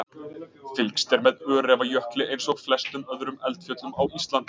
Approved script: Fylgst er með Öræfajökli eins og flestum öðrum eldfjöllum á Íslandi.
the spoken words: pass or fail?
pass